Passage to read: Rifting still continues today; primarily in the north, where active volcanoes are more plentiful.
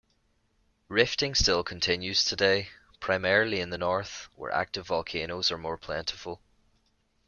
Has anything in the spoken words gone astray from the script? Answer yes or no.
no